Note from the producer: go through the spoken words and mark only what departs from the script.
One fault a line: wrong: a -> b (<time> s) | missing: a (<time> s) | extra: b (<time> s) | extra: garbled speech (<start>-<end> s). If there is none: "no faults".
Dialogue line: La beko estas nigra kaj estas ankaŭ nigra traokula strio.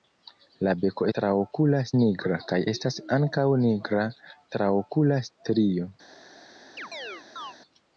wrong: estas -> traokula (1.2 s)